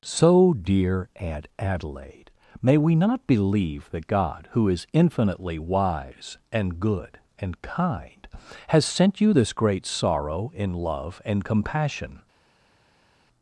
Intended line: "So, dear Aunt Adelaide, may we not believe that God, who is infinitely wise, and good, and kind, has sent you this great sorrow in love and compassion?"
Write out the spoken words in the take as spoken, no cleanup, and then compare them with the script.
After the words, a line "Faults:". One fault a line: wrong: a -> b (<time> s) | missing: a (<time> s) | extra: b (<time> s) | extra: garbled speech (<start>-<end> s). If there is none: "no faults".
"So, dear Aunt Adelaide, may we not believe that God, who is infinitely wise, and good, and kind, has sent you this great sorrow in love and compassion?"
Faults:
no faults